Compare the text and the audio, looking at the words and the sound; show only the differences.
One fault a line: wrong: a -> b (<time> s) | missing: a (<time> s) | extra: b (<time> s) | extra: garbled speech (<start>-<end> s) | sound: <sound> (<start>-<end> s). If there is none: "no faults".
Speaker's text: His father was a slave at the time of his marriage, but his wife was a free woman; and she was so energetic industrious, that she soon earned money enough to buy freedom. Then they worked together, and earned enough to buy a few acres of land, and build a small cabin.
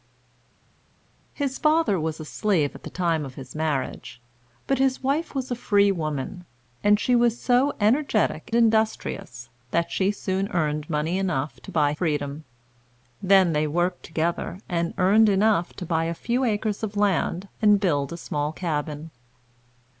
no faults